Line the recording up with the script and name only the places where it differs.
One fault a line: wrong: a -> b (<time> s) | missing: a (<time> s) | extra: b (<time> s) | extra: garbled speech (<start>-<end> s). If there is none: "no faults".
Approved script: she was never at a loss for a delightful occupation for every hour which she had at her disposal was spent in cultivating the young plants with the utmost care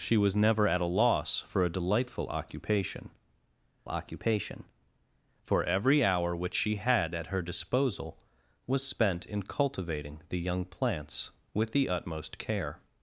extra: occupation (3.9 s)